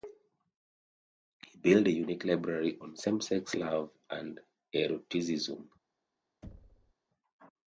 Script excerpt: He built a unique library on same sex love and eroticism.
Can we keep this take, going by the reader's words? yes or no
yes